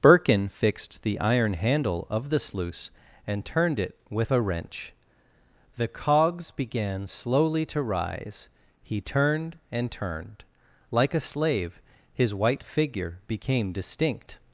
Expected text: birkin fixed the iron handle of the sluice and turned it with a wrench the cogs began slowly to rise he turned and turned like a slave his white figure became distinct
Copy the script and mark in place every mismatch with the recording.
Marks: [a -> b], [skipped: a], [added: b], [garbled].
birkin fixed the iron handle of the sluice and turned it with a wrench the cogs began slowly to rise he turned and turned like a slave his white figure became distinct